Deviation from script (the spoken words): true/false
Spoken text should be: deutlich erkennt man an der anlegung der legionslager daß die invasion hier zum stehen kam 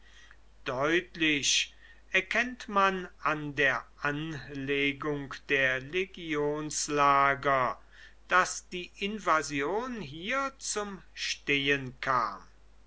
false